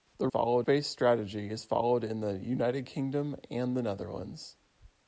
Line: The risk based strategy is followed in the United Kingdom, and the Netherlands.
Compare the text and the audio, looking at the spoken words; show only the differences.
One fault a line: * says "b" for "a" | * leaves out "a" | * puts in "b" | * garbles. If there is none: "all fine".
* says "followed" for "risk"